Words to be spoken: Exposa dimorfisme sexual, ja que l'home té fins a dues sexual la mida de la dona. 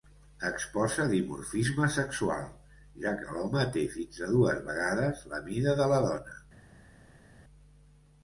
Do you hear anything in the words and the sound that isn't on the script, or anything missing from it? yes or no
yes